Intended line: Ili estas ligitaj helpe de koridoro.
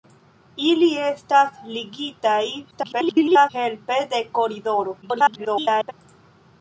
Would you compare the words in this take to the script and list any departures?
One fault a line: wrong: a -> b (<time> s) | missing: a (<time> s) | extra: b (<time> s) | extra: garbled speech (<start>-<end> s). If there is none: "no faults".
extra: garbled speech (2.7-3.5 s)
extra: garbled speech (5.0-5.9 s)